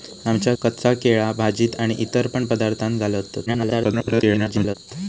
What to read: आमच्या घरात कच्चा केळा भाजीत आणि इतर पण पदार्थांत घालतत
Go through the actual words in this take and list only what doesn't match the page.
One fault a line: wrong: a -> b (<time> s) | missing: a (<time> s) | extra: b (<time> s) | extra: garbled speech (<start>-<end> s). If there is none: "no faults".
missing: घरात (0.5 s)
extra: garbled speech (3.5-4.8 s)